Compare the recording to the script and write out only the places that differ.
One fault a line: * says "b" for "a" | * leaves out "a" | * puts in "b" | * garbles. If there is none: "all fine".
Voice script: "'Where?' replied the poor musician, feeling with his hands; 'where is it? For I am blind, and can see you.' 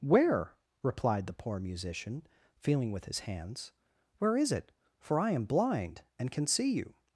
all fine